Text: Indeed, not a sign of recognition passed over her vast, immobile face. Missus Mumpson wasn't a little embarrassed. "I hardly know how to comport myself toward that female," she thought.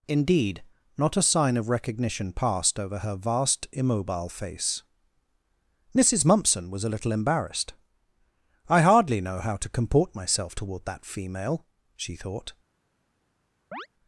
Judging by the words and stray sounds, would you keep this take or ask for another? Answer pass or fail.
fail